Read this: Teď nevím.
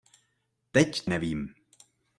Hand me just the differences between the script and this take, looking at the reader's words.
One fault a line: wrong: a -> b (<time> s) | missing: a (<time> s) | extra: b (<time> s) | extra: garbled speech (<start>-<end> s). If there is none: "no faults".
no faults